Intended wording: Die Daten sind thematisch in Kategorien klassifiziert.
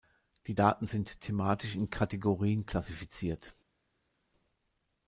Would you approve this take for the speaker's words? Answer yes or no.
yes